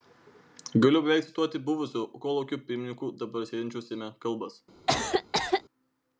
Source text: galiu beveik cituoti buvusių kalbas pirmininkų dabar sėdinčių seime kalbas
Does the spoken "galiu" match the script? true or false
true